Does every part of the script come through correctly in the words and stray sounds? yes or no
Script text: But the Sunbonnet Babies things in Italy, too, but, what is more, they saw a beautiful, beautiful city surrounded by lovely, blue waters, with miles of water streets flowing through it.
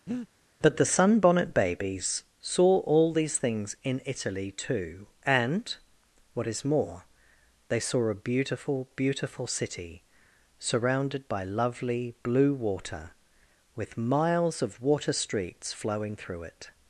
no